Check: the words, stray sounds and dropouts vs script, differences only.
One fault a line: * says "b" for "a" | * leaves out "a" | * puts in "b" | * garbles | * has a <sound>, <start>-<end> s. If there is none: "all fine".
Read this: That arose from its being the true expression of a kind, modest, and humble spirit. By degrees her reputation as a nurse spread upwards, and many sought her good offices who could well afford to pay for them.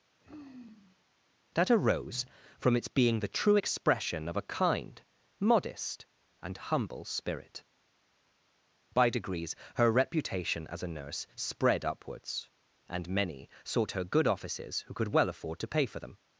* has a sigh, 0.2-1.0 s